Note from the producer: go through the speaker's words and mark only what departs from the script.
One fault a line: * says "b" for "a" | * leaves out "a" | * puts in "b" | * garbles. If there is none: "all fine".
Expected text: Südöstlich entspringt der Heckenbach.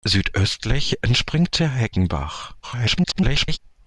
* garbles